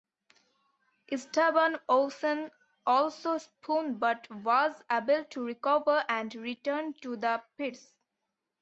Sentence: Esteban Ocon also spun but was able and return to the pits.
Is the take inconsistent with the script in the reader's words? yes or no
yes